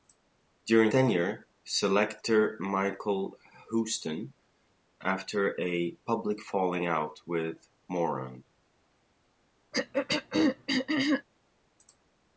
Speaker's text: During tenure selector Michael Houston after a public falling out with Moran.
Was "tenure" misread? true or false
false